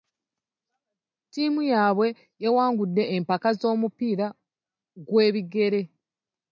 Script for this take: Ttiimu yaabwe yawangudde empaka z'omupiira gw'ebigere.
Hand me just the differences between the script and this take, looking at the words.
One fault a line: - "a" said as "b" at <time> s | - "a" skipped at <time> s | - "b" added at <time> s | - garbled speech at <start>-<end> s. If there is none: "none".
none